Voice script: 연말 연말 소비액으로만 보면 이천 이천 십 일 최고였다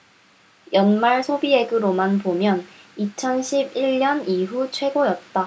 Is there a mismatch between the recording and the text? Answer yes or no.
yes